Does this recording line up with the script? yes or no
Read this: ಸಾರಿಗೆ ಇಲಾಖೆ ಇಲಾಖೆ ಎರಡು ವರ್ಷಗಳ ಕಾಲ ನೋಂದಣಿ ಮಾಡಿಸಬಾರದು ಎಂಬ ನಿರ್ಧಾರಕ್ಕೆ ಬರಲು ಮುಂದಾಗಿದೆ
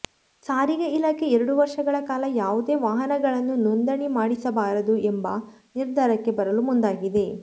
no